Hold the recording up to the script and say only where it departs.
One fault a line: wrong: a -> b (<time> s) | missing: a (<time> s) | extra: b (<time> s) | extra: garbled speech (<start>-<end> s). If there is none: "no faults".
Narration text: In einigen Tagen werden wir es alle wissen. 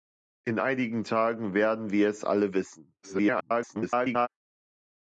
extra: garbled speech (3.0-4.3 s)